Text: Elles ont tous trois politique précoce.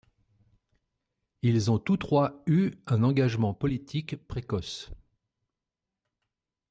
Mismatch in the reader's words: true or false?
true